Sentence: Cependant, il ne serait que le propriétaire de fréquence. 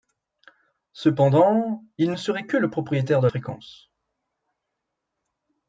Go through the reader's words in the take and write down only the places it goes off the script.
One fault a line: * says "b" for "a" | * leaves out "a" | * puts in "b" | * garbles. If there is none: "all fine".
all fine